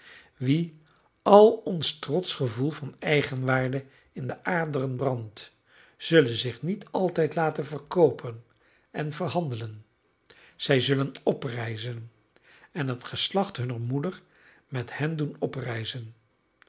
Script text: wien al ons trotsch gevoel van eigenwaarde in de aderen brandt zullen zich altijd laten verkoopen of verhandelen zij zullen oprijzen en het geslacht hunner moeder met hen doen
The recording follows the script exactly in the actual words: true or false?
false